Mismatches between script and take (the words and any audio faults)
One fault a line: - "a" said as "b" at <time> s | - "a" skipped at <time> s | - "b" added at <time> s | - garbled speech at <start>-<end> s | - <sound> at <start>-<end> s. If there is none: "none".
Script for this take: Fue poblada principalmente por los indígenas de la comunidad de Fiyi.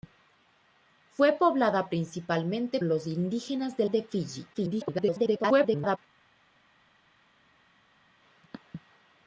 - "por" skipped at 2.8 s
- "la comunidad" skipped at 3.8 s
- garbled speech at 4.5-6.0 s